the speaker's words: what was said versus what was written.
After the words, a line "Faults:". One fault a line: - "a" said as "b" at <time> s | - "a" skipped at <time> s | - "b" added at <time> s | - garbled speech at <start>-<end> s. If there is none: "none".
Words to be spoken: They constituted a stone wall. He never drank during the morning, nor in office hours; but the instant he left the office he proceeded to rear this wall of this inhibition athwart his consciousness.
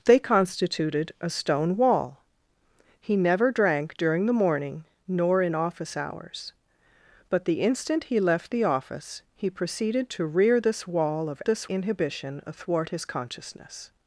They constituted a stone wall. He never drank during the morning, nor in office hours; but the instant he left the office he proceeded to rear this wall of this inhibition athwart his consciousness.
Faults:
none